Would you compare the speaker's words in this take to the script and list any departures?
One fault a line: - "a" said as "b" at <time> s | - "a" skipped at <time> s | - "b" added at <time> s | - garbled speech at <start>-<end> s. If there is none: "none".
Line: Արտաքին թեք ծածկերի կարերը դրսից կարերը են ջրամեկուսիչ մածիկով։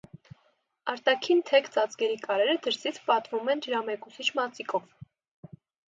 - "կարերը" said as "պատվում" at 3.1 s